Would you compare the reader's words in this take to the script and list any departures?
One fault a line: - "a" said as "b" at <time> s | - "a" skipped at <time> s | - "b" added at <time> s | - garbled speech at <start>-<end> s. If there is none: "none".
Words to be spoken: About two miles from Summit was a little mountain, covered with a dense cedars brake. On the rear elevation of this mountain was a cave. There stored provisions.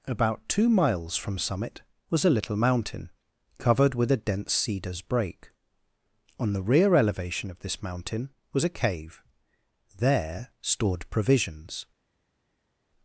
none